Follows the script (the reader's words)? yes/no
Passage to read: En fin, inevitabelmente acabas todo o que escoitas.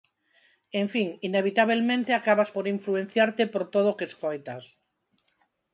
no